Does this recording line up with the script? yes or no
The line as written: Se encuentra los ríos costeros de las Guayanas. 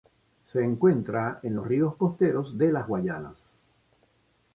no